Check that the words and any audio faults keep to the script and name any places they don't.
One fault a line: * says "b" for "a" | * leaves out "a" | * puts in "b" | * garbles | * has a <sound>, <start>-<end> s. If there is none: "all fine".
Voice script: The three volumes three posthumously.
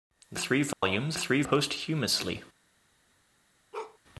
* has a dropout, 0.7-0.8 s
* has a bark, 3.7-4.0 s